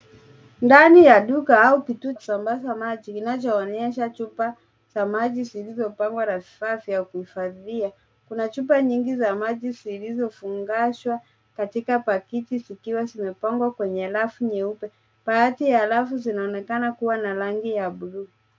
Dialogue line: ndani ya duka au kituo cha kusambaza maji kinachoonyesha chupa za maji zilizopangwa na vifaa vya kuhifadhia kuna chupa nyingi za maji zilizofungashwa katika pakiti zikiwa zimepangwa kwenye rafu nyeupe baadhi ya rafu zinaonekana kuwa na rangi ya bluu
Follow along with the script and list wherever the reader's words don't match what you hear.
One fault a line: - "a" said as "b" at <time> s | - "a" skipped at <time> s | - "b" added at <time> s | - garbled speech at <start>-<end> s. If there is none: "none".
- "cha" skipped at 2.1 s